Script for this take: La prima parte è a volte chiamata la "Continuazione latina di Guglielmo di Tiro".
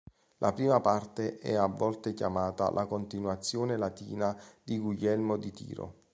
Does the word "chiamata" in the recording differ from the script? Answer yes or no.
no